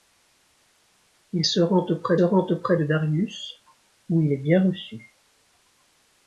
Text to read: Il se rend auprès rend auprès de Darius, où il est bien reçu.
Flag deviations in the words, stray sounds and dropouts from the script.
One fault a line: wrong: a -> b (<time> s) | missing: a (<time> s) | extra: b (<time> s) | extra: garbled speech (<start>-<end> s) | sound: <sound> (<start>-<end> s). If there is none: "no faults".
no faults